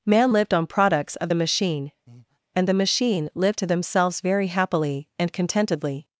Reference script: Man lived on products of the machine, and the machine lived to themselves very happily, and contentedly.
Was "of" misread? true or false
false